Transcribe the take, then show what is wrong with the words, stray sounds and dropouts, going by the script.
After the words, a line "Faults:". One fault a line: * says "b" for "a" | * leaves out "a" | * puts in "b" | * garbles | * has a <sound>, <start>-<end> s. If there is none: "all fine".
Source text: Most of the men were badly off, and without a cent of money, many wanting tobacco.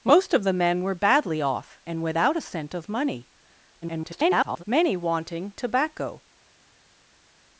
Most of the men were badly off, and without a cent of money, [garbled] many wanting tobacco.
Faults:
* garbles